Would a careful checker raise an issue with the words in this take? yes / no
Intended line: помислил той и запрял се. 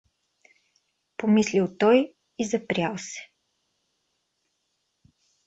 no